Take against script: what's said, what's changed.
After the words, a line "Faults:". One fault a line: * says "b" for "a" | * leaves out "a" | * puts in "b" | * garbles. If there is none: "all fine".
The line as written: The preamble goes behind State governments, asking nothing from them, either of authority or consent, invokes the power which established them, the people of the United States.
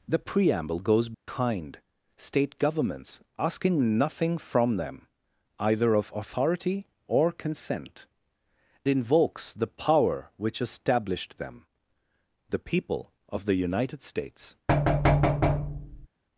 The preamble goes behind State governments, asking nothing from them, either of authority or consent, invokes the power which established them, the people of the United States.
Faults:
all fine